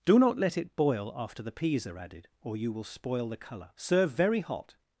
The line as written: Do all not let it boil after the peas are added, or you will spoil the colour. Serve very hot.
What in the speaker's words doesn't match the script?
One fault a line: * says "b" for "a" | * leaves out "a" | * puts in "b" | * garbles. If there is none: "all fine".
* leaves out "all"